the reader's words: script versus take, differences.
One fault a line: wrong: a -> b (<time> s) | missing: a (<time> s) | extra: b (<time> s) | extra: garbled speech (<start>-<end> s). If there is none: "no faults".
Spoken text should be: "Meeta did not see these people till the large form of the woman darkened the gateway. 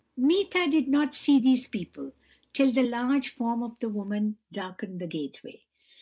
no faults